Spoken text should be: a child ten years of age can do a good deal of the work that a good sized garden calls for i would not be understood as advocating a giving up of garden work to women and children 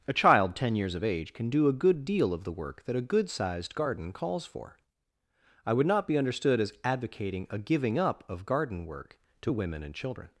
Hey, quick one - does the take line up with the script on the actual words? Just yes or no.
yes